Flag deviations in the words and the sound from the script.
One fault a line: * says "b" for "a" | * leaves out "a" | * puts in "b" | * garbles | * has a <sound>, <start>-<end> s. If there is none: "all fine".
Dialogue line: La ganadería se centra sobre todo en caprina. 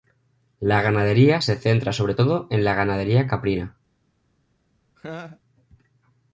* puts in "la ganadería"
* has a laugh, 5.0-5.4 s